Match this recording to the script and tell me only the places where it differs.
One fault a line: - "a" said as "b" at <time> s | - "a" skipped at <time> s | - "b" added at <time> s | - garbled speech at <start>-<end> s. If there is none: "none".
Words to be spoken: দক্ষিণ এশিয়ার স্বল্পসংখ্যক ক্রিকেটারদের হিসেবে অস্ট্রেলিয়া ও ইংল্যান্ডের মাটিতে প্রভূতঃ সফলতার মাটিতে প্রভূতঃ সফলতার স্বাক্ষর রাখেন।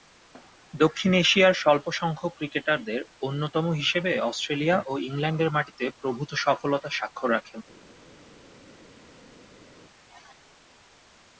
- "অন্যতম" added at 3.2 s
- "মাটিতে প্রভূতঃ সফলতার" skipped at 7.0 s